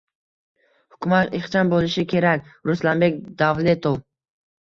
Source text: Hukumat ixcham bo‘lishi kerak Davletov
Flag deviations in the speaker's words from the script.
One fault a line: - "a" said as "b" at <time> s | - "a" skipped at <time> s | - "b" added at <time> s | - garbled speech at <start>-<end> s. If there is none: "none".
- "Ruslanbek" added at 2.7 s